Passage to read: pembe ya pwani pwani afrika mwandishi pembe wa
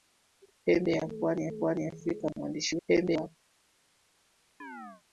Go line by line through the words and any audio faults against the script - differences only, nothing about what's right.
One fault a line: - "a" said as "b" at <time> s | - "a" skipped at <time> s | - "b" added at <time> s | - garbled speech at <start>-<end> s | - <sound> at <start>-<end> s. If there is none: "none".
- chirp at 4.6-5.0 s